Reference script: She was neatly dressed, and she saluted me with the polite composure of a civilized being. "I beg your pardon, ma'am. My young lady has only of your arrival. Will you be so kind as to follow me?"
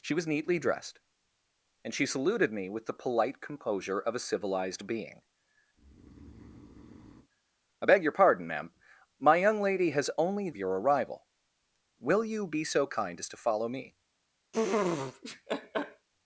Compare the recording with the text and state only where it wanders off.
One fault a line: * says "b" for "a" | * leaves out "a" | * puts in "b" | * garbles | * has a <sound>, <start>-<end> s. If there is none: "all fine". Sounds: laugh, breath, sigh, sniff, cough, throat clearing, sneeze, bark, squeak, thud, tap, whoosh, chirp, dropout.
* has a breath, 5.7-7.3 s
* has a laugh, 14.5-16.1 s